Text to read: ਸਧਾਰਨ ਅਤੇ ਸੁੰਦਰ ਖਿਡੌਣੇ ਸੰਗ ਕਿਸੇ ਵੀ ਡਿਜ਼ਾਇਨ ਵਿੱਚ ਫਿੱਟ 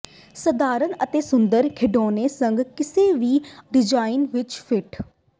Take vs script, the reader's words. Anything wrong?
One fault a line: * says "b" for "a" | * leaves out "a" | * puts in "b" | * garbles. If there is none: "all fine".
all fine